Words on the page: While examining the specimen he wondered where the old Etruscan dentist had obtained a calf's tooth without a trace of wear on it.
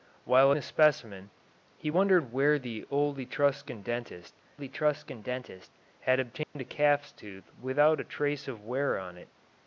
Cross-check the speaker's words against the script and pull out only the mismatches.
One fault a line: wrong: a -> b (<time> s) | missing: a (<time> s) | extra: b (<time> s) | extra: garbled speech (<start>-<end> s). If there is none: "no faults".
missing: examining (0.5 s)
extra: Etruscan dentist (4.6 s)